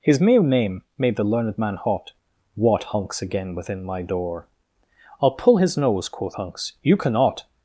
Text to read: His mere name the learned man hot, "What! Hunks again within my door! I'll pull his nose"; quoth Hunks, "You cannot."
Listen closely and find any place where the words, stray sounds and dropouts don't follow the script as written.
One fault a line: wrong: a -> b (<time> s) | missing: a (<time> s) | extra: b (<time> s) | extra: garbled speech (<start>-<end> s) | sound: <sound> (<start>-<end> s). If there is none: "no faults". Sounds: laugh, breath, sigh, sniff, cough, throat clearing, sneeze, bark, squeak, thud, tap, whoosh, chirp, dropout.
extra: made (1.0 s)